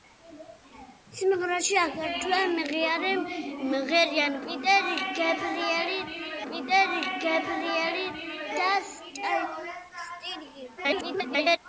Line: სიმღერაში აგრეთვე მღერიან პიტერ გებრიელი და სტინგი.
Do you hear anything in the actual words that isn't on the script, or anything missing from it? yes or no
yes